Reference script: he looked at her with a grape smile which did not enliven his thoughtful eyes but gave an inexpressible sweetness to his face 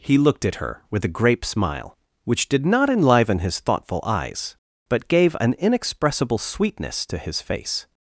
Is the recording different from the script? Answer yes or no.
no